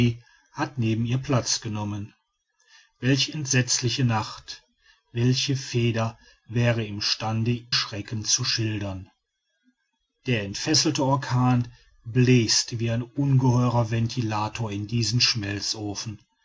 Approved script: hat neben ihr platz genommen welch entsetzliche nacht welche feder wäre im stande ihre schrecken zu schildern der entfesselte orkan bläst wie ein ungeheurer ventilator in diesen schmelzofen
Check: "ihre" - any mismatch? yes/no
yes